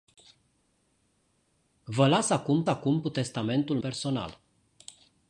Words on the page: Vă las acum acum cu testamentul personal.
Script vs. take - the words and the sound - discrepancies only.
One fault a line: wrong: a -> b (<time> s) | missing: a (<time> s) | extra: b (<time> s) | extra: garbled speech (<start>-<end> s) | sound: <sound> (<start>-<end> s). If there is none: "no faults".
no faults